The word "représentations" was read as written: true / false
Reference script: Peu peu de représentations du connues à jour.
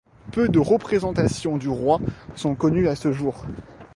true